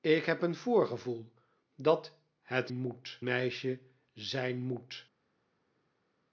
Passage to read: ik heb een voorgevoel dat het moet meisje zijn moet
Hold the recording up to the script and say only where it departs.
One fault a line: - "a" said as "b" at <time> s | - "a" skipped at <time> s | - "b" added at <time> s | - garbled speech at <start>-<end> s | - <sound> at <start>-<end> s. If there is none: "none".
none